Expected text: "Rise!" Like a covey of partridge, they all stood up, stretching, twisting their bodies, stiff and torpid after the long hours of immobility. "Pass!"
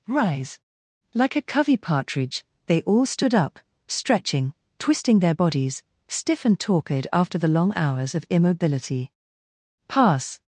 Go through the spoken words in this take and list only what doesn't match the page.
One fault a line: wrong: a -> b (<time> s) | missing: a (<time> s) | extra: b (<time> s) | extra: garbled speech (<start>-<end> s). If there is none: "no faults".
missing: of (1.8 s)